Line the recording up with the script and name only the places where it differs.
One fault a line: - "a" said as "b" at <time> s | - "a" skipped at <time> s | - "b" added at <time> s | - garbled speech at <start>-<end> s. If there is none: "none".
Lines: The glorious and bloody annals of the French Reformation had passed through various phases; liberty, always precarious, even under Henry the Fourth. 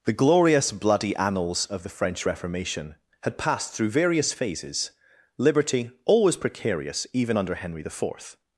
- "and" skipped at 0.7 s